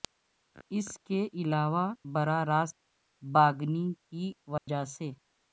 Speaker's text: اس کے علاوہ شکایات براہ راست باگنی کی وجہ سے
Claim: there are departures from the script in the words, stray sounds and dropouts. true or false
true